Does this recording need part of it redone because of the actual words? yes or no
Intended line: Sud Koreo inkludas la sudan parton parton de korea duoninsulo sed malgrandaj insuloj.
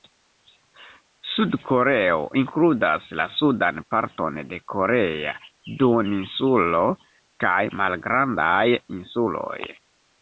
yes